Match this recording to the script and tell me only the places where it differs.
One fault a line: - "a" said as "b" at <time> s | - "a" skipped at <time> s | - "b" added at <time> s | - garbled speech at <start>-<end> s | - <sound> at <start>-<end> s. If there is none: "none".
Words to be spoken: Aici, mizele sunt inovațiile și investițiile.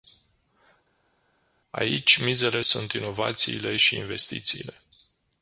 none